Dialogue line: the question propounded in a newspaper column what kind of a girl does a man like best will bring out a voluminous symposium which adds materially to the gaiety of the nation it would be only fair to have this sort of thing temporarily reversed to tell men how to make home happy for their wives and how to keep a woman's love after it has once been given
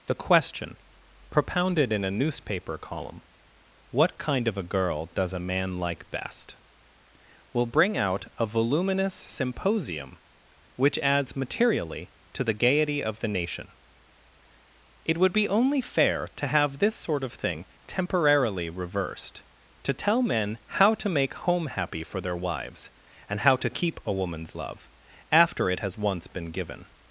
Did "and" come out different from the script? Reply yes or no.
no